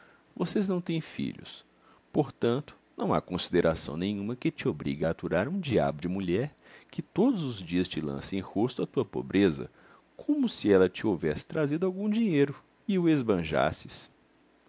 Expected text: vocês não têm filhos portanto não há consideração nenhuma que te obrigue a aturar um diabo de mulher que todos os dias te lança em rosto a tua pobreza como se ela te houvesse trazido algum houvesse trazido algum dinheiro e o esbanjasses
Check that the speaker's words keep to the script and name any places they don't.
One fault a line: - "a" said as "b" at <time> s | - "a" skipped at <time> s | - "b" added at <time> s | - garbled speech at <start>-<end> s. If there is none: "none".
- "houvesse trazido algum" skipped at 12.1 s